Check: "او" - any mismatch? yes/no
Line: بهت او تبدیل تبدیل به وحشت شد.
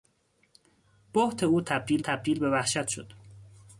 no